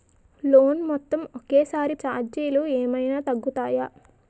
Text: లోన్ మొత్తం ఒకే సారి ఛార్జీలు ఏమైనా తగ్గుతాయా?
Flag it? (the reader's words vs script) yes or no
no